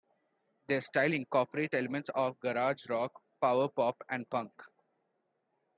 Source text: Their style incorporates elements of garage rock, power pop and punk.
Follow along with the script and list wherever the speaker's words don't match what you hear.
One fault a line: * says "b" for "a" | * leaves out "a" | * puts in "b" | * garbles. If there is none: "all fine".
all fine